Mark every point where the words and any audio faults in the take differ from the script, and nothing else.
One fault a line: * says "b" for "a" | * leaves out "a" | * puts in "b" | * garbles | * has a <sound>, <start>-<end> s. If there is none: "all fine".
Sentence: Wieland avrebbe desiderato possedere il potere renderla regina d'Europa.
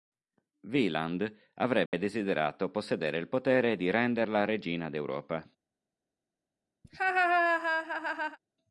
* has a dropout, 1.9-1.9 s
* puts in "di"
* has a laugh, 6.8-8.4 s